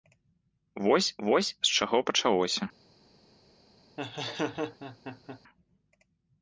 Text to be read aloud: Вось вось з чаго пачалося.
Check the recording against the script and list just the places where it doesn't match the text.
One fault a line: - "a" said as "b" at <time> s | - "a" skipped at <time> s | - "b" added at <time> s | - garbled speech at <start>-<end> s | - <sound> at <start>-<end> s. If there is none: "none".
- laugh at 4.0-5.4 s